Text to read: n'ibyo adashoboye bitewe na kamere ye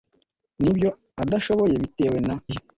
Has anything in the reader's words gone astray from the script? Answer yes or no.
yes